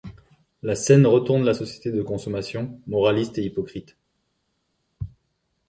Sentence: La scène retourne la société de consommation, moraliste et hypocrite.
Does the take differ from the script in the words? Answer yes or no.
no